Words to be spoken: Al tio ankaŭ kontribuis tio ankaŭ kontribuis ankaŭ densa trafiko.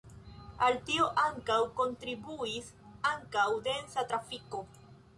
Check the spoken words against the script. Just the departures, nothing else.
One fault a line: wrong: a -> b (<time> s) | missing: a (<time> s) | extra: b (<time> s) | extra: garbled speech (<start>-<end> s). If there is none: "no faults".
missing: tio ankaŭ kontribuis (2.7 s)